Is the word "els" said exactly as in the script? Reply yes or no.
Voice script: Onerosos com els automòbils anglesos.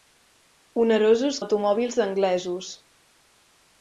no